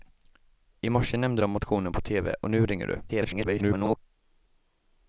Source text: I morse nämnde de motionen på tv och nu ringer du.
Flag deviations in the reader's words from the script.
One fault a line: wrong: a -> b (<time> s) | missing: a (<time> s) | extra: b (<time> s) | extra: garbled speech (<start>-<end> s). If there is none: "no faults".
extra: garbled speech (3.1-4.0 s)